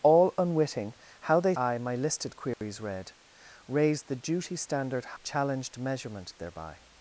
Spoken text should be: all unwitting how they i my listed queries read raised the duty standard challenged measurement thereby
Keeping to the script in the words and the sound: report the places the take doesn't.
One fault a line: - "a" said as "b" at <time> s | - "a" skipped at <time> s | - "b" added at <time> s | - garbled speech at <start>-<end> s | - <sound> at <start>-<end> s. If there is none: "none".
- dropout at 2.5-2.6 s